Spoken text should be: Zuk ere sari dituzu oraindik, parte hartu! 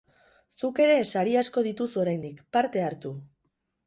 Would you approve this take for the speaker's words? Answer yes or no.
no